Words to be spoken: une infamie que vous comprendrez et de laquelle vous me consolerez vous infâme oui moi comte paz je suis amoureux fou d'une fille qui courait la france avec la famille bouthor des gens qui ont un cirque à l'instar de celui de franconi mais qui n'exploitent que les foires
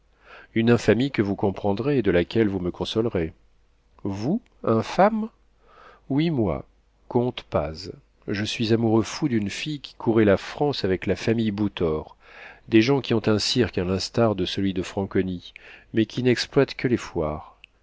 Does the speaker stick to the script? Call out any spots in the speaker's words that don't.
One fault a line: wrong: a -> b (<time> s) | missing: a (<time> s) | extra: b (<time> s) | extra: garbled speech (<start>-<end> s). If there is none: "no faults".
no faults